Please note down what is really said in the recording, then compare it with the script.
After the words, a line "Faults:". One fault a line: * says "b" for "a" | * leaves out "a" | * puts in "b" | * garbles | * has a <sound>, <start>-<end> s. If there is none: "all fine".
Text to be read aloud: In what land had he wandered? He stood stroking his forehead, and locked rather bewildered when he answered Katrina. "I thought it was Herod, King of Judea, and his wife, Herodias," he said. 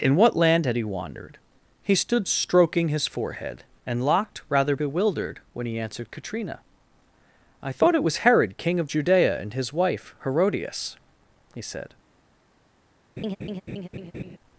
In what land had he wandered? He stood stroking his forehead, and locked rather bewildered when he answered Katrina. "I thought it was Herod, King of Judea, and his wife, Herodias," he said.
Faults:
* has a laugh, 13.2-14.4 s